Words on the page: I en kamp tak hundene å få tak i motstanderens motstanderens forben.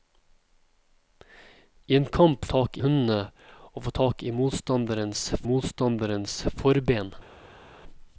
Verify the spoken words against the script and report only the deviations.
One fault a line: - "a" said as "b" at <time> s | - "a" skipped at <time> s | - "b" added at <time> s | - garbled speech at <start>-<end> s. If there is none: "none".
none